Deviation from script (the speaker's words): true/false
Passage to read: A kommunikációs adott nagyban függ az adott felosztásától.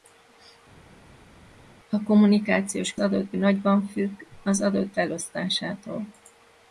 false